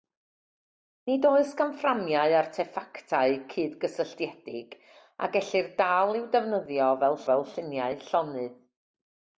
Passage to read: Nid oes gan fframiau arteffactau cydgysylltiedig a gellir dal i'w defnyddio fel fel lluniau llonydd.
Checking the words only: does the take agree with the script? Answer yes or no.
yes